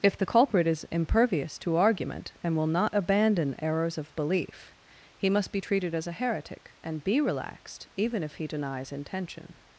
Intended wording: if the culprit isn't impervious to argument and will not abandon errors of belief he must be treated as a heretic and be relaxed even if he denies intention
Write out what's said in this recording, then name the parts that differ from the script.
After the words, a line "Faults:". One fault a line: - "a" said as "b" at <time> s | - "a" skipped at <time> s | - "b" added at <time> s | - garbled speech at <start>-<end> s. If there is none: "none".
if the culprit is impervious to argument and will not abandon errors of belief he must be treated as a heretic and be relaxed even if he denies intention
Faults:
- "isn't" said as "is" at 0.6 s